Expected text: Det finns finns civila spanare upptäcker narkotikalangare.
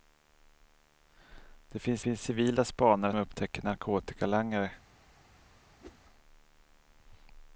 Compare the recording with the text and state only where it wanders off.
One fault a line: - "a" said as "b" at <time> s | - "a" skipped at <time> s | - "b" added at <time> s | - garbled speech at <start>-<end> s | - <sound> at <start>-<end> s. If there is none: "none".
- whoosh at 5.8-6.0 s